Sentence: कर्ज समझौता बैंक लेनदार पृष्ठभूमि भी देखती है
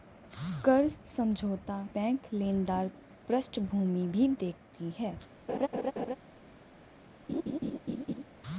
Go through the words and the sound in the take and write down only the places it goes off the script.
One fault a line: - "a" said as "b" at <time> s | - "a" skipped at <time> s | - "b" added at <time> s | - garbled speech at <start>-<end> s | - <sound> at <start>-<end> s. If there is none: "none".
- laugh at 5.5-6.2 s
- laugh at 7.3-8.2 s